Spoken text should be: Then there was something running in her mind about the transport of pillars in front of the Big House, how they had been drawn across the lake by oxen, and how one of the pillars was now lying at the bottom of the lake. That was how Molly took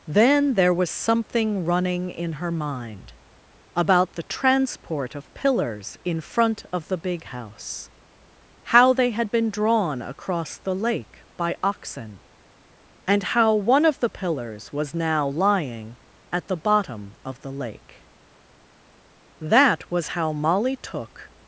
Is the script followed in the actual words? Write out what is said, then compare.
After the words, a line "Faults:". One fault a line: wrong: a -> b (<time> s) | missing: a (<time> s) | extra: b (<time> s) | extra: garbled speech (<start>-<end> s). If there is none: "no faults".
Then there was something running in her mind about the transport of pillars in front of the Big House, how they had been drawn across the lake by oxen, and how one of the pillars was now lying at the bottom of the lake. That was how Molly took
Faults:
no faults